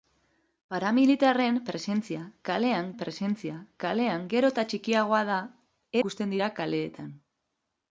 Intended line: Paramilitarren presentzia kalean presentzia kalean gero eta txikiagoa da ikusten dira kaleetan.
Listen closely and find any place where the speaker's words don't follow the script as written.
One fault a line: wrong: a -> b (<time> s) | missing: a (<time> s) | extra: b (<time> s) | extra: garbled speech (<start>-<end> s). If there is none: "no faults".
no faults